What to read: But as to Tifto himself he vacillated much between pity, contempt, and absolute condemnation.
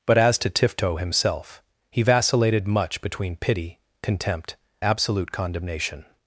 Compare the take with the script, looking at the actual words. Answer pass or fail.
fail